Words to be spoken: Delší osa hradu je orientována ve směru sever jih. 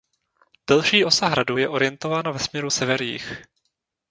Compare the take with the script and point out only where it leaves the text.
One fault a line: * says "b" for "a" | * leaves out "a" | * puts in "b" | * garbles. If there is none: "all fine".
all fine